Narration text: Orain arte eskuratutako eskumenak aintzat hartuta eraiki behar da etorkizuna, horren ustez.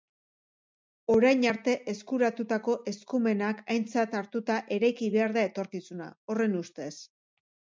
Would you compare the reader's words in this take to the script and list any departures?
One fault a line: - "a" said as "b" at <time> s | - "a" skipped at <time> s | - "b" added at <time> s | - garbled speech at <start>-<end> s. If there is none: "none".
none